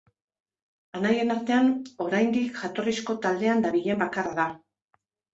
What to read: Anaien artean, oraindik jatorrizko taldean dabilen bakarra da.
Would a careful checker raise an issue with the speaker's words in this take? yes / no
no